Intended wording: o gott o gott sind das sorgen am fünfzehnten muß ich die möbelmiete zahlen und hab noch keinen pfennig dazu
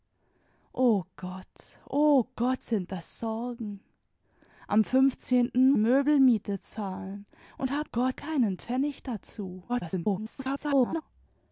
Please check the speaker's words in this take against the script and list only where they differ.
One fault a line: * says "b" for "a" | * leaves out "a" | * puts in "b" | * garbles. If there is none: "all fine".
* leaves out "muß ich die"
* says "gott" for "noch"
* garbles